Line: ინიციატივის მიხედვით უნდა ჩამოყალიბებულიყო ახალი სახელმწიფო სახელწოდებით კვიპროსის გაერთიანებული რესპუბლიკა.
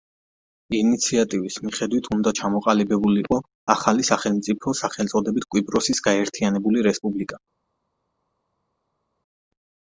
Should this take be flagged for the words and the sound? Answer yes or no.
no